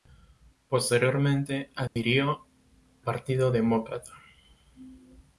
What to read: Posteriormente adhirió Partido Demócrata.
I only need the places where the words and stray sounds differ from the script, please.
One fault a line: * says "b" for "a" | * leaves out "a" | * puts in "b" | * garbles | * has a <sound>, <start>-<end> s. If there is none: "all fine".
* has a dropout, 1.9-2.0 s